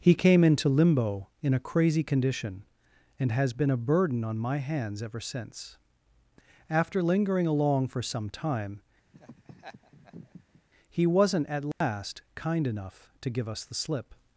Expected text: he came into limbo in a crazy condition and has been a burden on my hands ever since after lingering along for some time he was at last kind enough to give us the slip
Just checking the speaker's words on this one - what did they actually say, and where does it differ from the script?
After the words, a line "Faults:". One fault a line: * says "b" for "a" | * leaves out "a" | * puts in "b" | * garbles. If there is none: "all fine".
he came into limbo in a crazy condition and has been a burden on my hands ever since after lingering along for some time he wasn't at last kind enough to give us the slip
Faults:
* says "wasn't" for "was"